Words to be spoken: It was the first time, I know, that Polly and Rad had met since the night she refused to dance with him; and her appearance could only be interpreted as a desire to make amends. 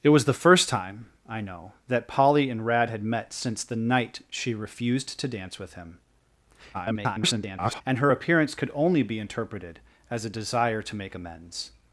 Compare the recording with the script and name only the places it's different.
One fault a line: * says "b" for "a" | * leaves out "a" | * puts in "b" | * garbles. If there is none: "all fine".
* garbles